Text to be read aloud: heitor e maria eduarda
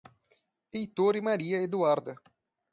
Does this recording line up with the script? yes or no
yes